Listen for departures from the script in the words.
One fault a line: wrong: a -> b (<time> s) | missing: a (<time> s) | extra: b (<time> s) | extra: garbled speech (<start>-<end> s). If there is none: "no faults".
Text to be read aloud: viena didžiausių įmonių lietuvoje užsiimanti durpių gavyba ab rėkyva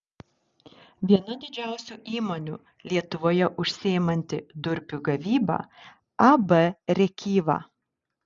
no faults